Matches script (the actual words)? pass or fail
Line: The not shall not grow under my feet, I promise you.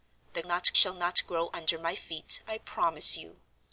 pass